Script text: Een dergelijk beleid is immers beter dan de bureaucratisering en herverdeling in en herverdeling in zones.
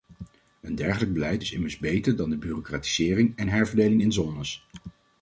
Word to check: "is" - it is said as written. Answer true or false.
true